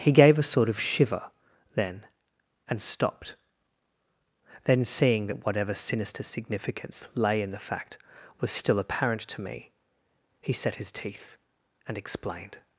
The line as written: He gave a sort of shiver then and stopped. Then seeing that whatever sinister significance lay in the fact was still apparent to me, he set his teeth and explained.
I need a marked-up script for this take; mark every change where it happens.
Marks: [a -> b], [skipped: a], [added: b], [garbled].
He gave a sort of shiver then and stopped. Then seeing that whatever sinister significance lay in the fact was still apparent to me, he set his teeth and explained.